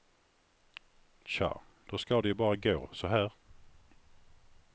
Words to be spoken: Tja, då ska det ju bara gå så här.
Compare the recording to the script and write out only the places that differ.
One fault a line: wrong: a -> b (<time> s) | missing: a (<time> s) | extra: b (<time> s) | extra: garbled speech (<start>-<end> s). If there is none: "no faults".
no faults